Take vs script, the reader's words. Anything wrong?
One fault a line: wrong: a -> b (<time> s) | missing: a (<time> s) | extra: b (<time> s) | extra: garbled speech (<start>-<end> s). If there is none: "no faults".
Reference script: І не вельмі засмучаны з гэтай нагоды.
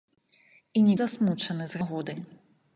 missing: вельмі (0.9 s)
missing: гэтай (1.8 s)